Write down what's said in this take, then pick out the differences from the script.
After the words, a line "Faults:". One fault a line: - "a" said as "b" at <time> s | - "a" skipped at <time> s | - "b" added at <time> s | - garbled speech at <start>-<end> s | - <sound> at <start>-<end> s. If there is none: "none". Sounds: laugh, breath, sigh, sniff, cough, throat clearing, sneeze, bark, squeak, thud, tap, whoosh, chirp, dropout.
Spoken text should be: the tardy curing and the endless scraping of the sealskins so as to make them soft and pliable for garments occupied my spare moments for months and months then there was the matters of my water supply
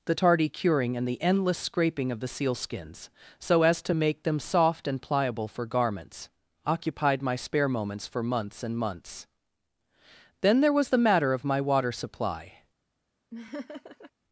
the tardy curing and the endless scraping of the sealskins so as to make them soft and pliable for garments occupied my spare moments for months and months then there was the matter of my water supply
Faults:
- "matters" said as "matter" at 11.0 s
- laugh at 13.3-14.1 s